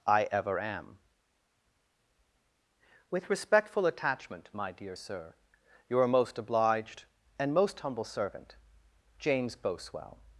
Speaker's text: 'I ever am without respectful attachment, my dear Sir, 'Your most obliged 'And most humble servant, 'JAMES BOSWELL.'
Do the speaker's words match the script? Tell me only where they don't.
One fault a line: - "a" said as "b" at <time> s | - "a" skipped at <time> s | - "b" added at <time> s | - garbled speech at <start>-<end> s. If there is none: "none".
- "without" said as "with" at 3.1 s